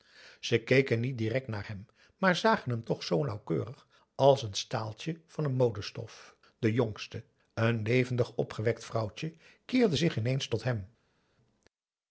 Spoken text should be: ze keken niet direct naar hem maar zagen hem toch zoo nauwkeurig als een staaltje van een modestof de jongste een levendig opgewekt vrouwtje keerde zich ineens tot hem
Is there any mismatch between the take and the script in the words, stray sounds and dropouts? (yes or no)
no